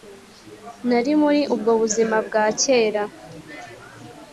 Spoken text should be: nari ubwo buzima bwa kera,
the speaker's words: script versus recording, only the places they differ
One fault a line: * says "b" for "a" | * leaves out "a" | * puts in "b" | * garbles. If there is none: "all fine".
* puts in "muri"